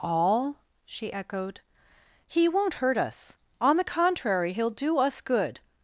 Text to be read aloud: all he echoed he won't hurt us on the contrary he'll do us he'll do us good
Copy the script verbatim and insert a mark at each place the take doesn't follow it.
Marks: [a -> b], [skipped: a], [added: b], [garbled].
all [he -> she] echoed he won't hurt us on the contrary he'll do us [skipped: he'll do us] good